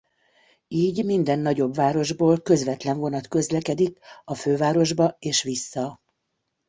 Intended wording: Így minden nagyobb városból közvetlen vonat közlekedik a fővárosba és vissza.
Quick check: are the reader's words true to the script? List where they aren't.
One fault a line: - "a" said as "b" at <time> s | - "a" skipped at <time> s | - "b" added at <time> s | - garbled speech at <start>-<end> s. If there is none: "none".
none